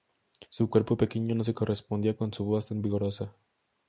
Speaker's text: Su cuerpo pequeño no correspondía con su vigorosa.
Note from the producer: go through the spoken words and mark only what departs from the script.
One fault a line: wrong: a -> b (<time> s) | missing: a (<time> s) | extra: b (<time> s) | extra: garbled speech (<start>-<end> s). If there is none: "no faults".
extra: se (1.4 s)
extra: voz tan (2.4 s)